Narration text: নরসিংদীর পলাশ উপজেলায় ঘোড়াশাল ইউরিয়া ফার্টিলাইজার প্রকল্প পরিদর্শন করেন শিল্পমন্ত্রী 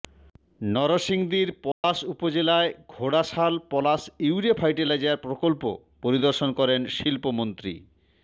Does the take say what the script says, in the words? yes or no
no